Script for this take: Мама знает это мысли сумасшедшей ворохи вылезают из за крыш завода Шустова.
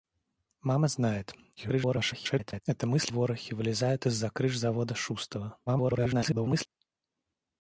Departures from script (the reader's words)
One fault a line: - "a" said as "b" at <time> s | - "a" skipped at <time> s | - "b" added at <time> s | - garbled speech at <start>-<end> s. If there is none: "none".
- garbled speech at 1.6-2.6 s
- "сумасшедшей" skipped at 3.1 s
- garbled speech at 5.7-6.7 s